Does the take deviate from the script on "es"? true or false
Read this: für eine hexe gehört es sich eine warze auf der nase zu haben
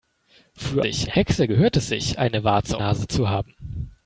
false